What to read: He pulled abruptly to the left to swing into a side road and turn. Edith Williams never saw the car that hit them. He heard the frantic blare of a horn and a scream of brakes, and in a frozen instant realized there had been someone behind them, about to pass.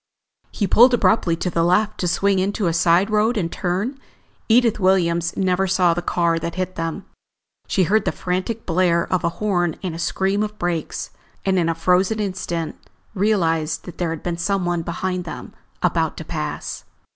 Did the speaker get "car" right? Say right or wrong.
right